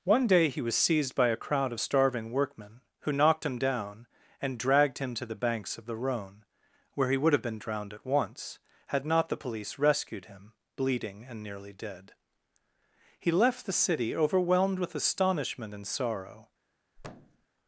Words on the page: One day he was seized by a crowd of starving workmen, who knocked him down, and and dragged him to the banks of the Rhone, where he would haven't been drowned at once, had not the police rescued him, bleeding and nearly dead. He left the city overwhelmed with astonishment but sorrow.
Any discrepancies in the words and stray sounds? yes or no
yes